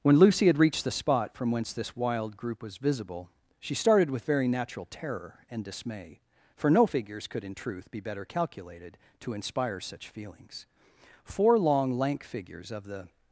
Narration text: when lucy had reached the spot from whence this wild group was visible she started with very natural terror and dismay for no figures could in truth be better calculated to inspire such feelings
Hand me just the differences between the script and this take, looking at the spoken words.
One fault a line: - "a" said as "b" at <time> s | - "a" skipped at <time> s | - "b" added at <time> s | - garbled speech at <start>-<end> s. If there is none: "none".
- "four long lank figures of the" added at 11.2 s